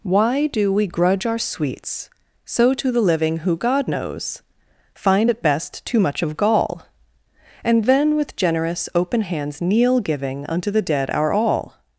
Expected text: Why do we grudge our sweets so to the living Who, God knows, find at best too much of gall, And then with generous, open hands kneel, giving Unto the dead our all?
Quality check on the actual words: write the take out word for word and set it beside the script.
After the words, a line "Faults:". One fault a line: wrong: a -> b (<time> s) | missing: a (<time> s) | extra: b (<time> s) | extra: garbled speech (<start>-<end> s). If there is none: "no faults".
Why do we grudge our sweets so to the living Who, God knows, find at best too much of gall, And then with generous, open hands kneel, giving Unto the dead our all?
Faults:
no faults